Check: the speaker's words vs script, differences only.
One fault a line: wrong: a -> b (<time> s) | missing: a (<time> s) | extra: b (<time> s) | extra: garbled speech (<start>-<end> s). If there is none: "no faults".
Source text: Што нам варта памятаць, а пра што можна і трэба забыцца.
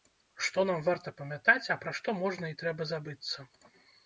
no faults